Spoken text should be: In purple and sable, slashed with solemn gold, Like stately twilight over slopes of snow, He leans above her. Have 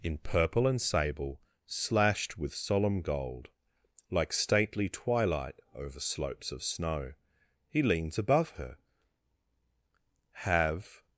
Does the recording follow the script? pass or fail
pass